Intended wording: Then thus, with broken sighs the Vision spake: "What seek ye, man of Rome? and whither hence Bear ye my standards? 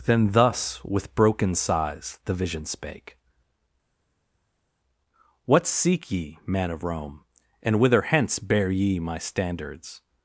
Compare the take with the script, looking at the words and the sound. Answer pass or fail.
pass